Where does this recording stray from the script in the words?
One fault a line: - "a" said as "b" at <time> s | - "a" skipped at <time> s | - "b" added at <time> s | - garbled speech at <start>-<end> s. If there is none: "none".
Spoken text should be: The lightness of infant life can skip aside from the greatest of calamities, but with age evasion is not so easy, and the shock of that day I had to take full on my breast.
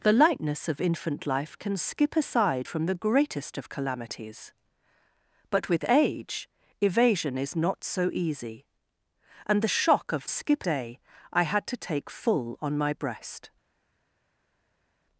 - "that" said as "skip" at 10.3 s